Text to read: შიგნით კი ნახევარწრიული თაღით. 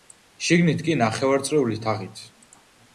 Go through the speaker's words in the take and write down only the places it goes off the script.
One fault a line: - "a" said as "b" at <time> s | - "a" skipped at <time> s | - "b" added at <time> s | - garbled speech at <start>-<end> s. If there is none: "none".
none